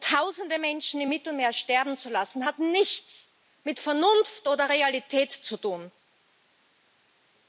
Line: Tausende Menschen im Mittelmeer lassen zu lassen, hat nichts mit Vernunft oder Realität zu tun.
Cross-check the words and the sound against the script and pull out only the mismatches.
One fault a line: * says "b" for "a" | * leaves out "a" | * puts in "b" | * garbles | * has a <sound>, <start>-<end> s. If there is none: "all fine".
* says "sterben" for "lassen"